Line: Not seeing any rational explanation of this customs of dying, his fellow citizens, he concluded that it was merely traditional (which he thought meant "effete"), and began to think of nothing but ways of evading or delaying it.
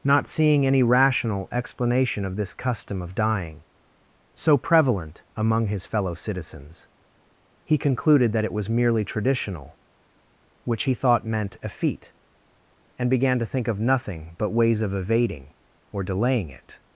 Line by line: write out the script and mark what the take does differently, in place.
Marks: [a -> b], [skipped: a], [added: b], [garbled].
Not seeing any rational explanation of this [customs -> custom] of dying, [added: so prevalent among] his fellow citizens, he concluded that it was merely traditional (which he thought meant "effete"), and began to think of nothing but ways of evading or delaying it.